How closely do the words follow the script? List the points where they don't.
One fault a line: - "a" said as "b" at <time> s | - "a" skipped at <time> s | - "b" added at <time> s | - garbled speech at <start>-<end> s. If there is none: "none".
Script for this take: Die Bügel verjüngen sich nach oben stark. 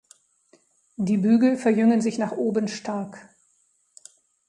none